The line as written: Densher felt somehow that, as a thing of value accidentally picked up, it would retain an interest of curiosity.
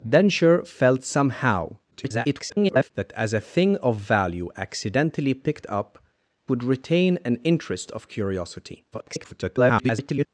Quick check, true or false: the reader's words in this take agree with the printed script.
false